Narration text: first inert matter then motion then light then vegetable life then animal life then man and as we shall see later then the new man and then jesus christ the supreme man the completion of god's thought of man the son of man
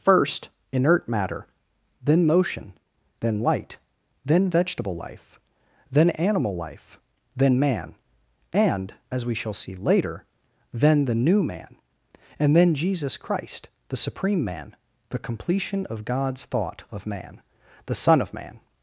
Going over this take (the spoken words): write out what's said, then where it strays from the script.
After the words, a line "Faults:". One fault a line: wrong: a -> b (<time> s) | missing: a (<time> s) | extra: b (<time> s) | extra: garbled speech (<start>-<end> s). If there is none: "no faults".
first inert matter then motion then light then vegetable life then animal life then man and as we shall see later then the new man and then jesus christ the supreme man the completion of god's thought of man the son of man
Faults:
no faults